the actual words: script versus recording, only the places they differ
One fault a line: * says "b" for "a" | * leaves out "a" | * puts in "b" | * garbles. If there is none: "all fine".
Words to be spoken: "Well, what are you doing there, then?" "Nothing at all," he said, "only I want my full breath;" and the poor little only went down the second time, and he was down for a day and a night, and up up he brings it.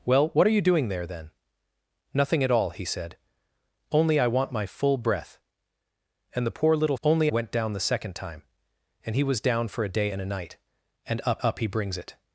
all fine